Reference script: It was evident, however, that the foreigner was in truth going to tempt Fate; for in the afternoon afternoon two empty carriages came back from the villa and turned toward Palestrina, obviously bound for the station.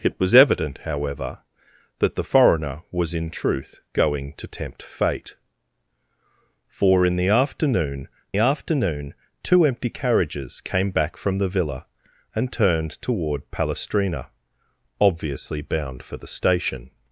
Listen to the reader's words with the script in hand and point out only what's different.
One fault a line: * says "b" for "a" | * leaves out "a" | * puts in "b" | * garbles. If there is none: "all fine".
all fine